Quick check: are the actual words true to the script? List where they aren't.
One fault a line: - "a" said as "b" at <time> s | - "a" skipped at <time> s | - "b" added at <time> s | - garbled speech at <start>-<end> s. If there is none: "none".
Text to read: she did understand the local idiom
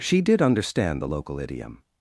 none